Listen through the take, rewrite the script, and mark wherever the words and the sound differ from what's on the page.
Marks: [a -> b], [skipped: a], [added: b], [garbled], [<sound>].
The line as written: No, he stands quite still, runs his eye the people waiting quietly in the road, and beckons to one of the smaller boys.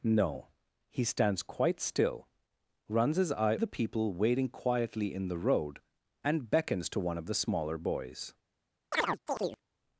No, he stands quite still, runs his eye the people waiting quietly in the road, and beckons to one of the smaller boys. [chirp]